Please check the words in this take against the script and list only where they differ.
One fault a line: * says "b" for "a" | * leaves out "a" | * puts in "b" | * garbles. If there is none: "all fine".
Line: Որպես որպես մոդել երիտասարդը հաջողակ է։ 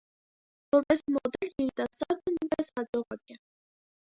* leaves out "որպես"
* puts in "նույնպես"